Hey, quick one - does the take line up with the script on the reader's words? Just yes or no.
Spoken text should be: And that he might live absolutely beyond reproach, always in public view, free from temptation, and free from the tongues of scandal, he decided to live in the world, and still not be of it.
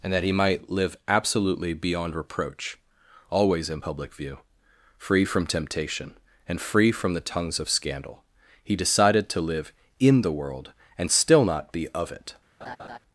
yes